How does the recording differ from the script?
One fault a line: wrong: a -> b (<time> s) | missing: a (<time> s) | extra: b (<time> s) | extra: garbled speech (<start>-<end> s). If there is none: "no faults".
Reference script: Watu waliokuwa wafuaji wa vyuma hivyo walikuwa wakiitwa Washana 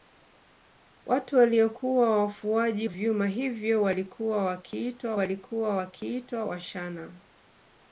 missing: wa (2.9 s)
extra: walikuwa wakiitwa (5.1 s)